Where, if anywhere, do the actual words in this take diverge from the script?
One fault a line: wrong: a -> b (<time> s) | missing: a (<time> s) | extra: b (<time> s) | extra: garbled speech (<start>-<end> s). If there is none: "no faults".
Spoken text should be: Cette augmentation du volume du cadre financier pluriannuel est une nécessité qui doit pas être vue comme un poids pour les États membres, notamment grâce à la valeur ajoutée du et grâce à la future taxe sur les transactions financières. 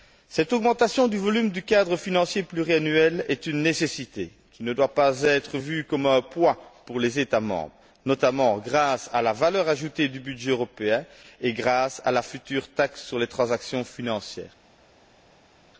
extra: ne (4.6 s)
extra: budget européen (10.2 s)